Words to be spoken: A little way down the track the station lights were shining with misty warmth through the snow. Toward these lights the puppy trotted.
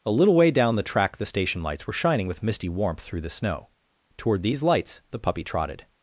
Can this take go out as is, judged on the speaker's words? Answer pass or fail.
pass